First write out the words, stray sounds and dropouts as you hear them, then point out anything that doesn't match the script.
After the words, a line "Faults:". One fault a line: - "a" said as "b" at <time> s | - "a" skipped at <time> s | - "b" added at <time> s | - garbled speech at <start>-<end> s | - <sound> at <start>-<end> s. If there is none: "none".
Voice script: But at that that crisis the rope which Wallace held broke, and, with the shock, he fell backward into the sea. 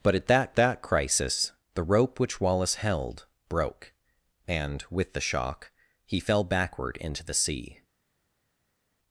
But at that that crisis the rope which Wallace held broke, and, with the shock, he fell backward into the sea.
Faults:
none